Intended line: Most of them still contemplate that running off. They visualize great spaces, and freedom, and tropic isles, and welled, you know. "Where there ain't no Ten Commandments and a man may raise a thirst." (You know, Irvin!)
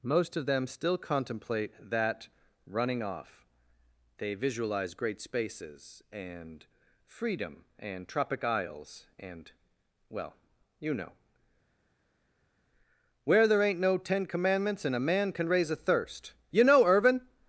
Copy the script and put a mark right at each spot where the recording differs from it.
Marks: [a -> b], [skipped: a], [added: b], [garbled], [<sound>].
Most of them still contemplate that running off. They visualize great spaces, and freedom, and tropic isles, and [welled, -> well] you know. "Where there ain't no Ten Commandments and a man [may -> can] raise a thirst." (You know, Irvin!)